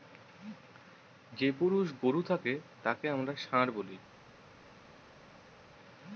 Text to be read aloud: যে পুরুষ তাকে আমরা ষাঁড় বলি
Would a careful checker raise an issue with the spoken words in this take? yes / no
yes